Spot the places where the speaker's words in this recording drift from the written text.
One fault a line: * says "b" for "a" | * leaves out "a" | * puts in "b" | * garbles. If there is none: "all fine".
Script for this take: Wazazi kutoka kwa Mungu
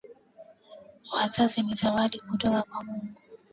* puts in "ni zawadi"